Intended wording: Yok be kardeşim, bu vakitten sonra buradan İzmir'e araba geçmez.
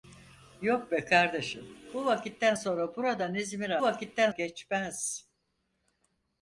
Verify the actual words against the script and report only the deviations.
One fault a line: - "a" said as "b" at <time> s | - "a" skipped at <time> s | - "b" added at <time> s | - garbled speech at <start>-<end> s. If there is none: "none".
- "araba" said as "vakitten" at 3.8 s